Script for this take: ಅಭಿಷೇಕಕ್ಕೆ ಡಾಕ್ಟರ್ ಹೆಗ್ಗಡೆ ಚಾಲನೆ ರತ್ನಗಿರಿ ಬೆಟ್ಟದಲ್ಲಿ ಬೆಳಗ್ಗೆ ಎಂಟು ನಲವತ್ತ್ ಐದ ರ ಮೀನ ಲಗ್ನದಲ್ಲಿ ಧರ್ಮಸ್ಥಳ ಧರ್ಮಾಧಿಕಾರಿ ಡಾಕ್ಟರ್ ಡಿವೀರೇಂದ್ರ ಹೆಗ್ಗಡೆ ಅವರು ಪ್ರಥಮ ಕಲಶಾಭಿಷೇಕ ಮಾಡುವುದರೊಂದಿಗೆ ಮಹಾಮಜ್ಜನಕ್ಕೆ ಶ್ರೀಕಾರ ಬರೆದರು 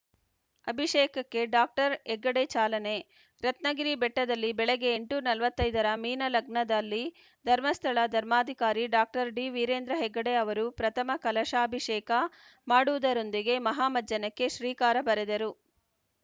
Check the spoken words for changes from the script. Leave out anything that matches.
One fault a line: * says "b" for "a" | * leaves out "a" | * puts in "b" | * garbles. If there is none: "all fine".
all fine